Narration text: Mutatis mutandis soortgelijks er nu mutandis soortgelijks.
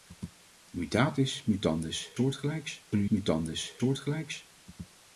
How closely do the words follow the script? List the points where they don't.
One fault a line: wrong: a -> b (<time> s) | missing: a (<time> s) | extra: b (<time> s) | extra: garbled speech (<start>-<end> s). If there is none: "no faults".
no faults